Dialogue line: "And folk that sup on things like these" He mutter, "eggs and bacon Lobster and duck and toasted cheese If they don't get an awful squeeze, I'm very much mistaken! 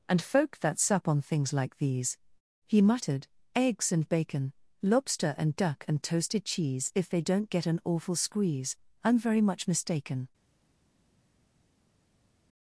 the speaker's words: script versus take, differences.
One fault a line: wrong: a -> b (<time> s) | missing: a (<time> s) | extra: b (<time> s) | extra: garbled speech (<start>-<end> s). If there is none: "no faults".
wrong: mutter -> muttered (2.8 s)